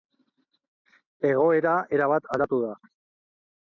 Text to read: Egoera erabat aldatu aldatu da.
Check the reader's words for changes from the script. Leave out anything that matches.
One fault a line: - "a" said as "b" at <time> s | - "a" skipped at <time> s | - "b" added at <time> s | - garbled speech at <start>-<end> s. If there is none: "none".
- "aldatu" skipped at 2.7 s